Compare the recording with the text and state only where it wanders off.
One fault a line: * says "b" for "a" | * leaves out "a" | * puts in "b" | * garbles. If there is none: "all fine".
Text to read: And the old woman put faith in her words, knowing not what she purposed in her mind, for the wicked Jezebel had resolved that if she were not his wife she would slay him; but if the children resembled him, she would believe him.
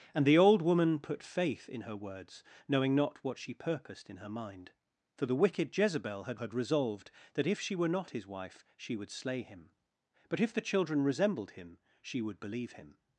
* puts in "had"